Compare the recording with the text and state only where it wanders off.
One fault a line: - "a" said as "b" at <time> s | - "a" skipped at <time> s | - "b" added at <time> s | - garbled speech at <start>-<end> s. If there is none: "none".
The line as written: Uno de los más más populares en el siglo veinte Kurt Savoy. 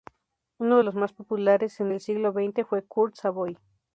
- "más" skipped at 1.1 s
- "fue" added at 2.6 s